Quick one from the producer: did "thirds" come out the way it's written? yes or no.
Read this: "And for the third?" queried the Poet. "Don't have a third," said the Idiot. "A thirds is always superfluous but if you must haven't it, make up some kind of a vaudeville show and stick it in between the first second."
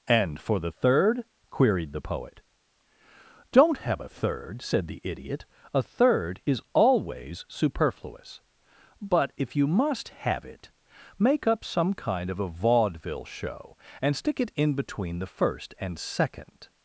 no